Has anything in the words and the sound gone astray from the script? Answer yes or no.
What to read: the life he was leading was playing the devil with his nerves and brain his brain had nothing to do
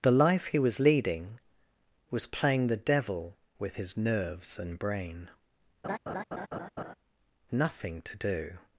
yes